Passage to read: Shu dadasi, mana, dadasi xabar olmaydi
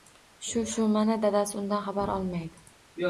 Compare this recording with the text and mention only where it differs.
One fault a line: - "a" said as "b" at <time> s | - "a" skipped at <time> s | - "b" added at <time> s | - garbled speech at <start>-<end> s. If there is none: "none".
- "dadasi" said as "shu" at 0.7 s
- "undan" added at 1.6 s